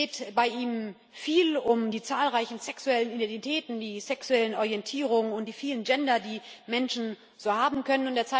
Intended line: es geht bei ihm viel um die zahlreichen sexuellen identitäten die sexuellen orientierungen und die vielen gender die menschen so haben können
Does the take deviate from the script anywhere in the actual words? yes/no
no